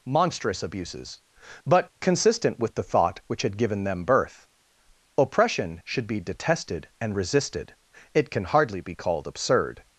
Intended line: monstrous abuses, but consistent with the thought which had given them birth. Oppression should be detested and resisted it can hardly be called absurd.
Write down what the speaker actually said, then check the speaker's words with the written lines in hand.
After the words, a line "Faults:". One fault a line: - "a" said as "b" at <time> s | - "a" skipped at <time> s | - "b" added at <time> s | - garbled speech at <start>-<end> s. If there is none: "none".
monstrous abuses, but consistent with the thought which had given them birth. Oppression should be detested and resisted it can hardly be called absurd.
Faults:
none